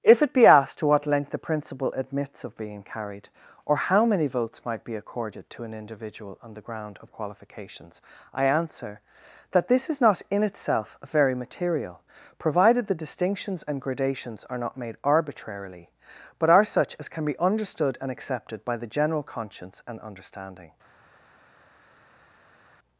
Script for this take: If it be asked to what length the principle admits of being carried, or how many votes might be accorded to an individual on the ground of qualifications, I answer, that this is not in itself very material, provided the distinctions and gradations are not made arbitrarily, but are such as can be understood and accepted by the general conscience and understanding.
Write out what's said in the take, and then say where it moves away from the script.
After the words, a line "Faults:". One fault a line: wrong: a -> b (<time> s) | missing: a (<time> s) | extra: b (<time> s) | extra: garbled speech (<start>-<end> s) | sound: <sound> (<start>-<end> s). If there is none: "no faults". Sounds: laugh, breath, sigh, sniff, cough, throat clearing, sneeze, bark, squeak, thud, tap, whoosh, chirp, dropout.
If it be asked to what length the principle admits of being carried, or how many votes might be accorded to an individual on the ground of qualifications, I answer, that this is not in itself very material, provided the distinctions and gradations are not made arbitrarily, but are such as can be understood and accepted by the general conscience and understanding.
Faults:
no faults